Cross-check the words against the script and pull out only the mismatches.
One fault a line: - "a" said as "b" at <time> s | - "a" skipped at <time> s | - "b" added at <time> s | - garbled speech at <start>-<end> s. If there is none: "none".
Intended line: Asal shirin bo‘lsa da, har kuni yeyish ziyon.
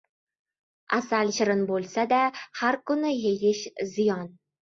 none